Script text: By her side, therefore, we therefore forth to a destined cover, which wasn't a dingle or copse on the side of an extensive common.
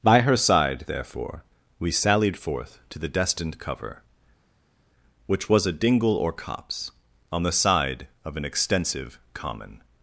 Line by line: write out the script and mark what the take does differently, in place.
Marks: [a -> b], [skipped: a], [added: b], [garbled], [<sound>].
By her side, therefore, we [therefore -> sallied] forth to [a -> the] destined cover, which [wasn't -> was] a dingle or copse on the side of an extensive common.